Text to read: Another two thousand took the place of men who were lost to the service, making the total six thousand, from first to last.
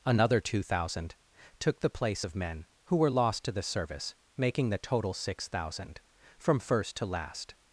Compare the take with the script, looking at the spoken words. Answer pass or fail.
pass